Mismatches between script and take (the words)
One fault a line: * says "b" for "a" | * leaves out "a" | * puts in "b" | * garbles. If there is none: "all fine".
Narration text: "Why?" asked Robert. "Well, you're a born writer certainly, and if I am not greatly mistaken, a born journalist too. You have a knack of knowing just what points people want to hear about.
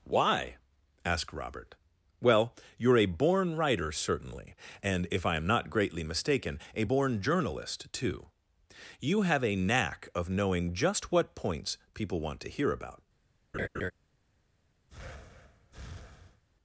all fine